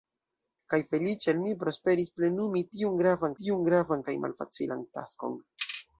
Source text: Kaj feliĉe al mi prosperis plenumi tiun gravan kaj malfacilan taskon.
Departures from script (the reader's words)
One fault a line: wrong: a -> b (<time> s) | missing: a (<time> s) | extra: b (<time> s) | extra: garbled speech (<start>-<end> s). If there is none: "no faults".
extra: tiun gravan (3.4 s)